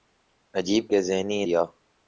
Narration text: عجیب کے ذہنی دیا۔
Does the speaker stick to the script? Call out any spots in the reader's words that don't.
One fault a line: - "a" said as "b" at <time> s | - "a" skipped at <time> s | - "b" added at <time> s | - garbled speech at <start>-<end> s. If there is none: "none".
none